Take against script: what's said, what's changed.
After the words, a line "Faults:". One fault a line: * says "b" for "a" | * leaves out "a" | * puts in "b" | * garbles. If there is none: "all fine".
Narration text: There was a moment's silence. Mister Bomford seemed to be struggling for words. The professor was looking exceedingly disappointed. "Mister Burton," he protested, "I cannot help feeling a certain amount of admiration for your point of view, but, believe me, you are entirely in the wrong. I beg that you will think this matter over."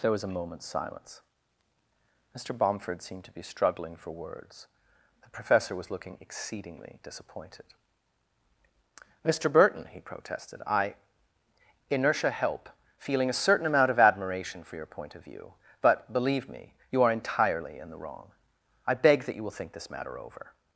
There was a moment's silence. Mister Bomford seemed to be struggling for words. The professor was looking exceedingly disappointed. "Mister Burton," he protested, "I inertia help feeling a certain amount of admiration for your point of view, but, believe me, you are entirely in the wrong. I beg that you will think this matter over."
Faults:
* says "inertia" for "cannot"